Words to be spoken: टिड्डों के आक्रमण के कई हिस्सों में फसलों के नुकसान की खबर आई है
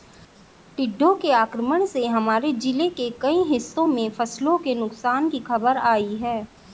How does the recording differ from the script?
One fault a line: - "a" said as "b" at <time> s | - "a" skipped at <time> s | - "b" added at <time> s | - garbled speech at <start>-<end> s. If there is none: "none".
- "से हमारे जिले" added at 1.9 s